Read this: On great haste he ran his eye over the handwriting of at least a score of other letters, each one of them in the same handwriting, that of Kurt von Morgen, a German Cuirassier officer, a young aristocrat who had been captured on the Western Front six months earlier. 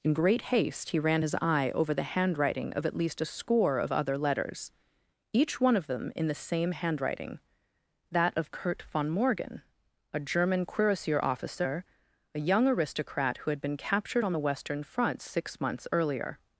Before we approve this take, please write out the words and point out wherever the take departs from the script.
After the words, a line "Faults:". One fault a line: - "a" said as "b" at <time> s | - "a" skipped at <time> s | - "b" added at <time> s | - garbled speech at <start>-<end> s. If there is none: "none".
In great haste he ran his eye over the handwriting of at least a score of other letters, each one of them in the same handwriting, that of Kurt von Morgen, a German Cuirassier officer, a young aristocrat who had been captured on the Western Front six months earlier.
Faults:
- "On" said as "In" at 0.0 s